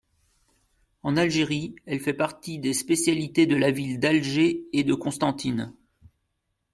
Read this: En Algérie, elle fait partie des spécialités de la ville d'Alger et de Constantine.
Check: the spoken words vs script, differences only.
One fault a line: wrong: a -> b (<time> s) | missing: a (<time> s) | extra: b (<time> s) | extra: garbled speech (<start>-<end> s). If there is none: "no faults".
no faults